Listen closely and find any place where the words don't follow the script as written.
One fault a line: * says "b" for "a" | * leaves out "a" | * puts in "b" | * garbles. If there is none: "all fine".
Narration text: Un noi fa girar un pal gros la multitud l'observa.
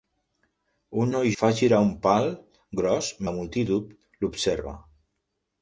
all fine